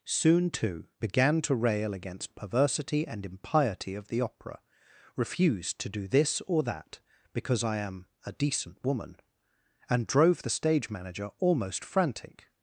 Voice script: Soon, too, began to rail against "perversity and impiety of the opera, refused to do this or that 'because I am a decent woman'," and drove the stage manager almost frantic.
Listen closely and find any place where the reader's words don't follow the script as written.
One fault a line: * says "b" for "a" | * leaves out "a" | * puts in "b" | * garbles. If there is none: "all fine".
all fine